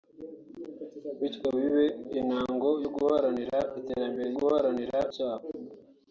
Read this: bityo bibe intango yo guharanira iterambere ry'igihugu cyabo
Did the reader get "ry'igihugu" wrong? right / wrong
wrong